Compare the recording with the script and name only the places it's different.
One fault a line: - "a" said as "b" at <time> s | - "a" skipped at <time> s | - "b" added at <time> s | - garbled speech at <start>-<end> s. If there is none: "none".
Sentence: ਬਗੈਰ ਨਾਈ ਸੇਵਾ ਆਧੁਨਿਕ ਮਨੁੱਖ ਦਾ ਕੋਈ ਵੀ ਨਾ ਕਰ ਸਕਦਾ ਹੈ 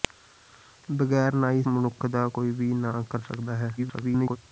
- "ਸੇਵਾ ਆਧੁਨਿਕ" skipped at 1.6 s
- garbled speech at 3.8-4.4 s